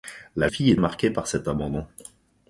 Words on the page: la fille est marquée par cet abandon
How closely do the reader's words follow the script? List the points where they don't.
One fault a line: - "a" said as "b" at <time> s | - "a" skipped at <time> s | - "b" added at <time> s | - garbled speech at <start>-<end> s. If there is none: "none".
none